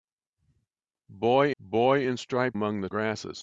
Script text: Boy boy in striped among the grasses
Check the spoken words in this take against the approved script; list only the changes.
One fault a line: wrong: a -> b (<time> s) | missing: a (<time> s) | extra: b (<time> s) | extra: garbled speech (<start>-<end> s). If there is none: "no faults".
no faults